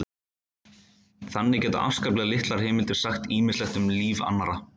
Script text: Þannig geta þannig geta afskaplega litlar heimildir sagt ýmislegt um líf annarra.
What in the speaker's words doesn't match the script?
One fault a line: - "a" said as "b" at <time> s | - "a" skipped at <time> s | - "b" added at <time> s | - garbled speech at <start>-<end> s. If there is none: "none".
- "þannig geta" skipped at 1.8 s